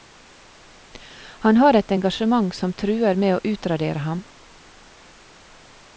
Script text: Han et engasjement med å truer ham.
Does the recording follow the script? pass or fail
fail